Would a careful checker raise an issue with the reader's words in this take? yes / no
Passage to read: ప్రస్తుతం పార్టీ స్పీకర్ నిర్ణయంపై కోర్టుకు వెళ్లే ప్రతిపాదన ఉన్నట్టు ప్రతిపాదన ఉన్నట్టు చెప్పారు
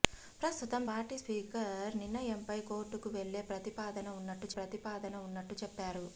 no